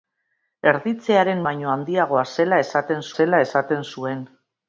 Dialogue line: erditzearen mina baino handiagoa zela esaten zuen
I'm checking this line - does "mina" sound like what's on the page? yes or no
no